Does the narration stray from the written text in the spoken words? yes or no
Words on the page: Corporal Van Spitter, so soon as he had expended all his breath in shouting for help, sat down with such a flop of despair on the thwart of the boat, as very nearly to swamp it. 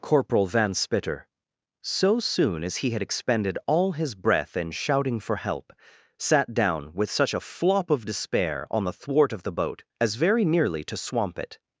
no